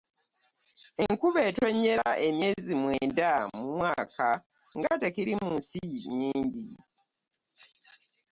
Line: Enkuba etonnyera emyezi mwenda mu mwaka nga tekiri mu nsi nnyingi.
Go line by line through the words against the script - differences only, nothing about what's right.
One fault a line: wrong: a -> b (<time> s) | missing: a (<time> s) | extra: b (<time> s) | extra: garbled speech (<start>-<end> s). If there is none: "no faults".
no faults